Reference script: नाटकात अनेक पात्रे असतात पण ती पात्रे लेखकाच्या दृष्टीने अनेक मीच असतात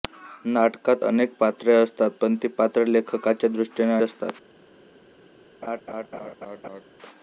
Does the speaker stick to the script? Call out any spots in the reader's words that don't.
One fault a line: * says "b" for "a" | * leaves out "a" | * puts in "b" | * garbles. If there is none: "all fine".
* leaves out "अनेक मीच"